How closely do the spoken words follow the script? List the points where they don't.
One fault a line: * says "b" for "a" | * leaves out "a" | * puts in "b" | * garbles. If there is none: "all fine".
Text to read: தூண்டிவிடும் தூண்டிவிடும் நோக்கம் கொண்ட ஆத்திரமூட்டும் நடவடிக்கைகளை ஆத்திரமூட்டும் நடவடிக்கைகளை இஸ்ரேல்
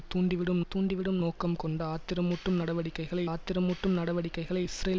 all fine